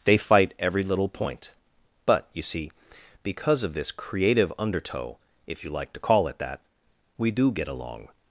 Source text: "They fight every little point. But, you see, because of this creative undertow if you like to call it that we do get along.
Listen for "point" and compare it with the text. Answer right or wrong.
right